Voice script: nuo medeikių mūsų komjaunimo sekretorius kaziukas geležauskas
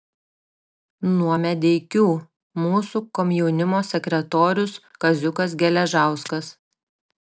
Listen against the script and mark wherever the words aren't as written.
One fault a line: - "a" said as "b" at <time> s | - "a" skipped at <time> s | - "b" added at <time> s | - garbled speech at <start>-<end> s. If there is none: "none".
none